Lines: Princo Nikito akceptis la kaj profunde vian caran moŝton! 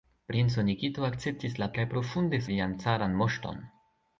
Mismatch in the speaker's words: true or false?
false